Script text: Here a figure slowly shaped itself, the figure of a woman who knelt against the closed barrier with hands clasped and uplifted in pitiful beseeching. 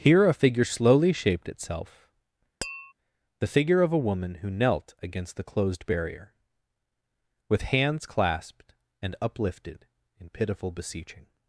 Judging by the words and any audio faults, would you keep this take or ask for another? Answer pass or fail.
fail